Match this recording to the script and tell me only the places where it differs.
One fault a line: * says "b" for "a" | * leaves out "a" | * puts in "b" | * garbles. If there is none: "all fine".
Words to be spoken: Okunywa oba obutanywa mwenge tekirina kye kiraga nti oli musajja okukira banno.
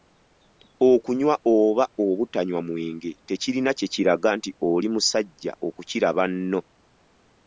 all fine